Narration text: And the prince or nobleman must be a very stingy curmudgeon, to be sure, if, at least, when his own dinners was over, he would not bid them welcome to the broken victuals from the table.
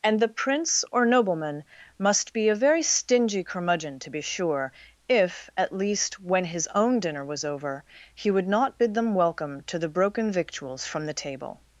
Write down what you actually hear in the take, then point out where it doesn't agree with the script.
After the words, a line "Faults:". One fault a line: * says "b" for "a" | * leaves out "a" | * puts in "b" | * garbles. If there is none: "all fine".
And the prince or nobleman must be a very stingy curmudgeon, to be sure, if, at least, when his own dinner was over, he would not bid them welcome to the broken victuals from the table.
Faults:
* says "dinner" for "dinners"